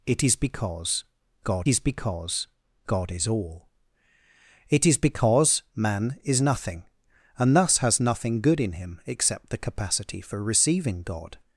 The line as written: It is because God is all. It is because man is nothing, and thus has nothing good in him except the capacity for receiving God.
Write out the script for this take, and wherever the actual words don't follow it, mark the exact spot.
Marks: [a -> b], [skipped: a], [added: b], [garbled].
It is because God is [added: because God is] all. It is because man is nothing, and thus has nothing good in him except the capacity for receiving God.